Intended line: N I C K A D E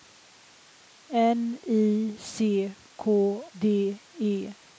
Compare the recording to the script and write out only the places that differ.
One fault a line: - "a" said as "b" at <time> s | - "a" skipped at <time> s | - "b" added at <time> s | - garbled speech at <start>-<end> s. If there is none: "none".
- "A" skipped at 3.0 s